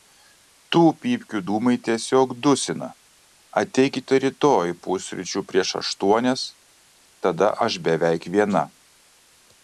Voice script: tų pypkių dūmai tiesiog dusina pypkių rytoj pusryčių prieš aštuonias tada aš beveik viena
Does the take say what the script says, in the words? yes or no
no